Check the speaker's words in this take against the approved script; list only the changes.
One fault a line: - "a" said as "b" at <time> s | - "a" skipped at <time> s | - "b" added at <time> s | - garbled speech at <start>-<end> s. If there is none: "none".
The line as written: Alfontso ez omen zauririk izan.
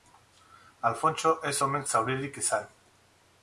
none